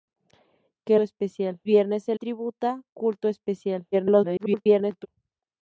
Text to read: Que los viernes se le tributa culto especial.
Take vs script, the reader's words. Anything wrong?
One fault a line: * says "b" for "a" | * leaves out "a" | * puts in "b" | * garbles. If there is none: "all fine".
* says "especial" for "los"
* leaves out "le"
* garbles